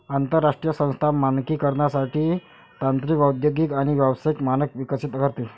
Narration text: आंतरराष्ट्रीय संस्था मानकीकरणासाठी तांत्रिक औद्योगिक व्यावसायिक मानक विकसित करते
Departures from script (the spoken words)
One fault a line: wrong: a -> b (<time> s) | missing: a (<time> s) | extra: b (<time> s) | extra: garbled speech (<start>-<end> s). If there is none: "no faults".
extra: आणि (3.7 s)